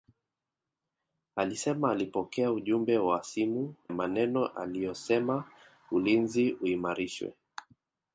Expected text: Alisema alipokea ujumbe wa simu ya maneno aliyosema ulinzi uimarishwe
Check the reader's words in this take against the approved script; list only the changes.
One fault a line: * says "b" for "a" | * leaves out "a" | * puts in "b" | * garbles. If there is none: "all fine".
* leaves out "ya"